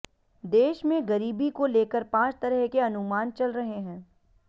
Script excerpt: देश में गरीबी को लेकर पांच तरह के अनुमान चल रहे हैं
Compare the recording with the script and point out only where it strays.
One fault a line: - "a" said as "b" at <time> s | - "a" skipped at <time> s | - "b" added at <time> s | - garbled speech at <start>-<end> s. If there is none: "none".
none